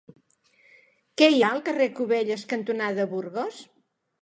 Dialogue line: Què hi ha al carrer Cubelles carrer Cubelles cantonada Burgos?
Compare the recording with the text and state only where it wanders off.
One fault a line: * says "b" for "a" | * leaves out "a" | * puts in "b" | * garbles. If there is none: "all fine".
* leaves out "carrer Cubelles"